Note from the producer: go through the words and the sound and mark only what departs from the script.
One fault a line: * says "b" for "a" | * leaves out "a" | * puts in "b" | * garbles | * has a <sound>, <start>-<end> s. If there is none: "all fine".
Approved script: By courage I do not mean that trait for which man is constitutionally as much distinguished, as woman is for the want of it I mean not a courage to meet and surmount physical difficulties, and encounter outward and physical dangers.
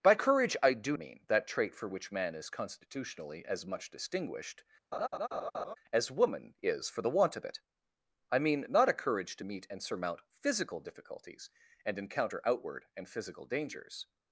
* leaves out "not"
* has a laugh, 4.9-5.8 s